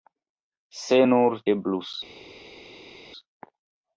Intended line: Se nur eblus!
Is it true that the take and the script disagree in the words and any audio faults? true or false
false